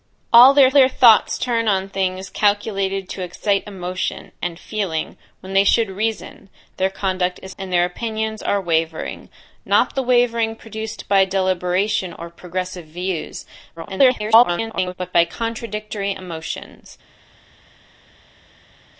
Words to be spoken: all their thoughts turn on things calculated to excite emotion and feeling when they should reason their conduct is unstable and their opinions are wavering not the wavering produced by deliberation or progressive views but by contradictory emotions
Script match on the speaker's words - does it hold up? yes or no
no